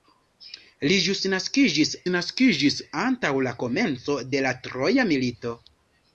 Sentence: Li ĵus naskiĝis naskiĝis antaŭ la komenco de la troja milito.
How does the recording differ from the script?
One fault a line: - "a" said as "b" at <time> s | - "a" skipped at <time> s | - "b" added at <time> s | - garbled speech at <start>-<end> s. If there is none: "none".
none